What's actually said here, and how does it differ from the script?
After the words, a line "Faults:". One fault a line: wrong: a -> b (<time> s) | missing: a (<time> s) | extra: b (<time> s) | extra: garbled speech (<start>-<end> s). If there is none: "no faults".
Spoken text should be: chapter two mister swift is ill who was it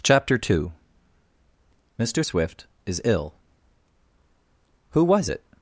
chapter two mister swift is ill who was it
Faults:
no faults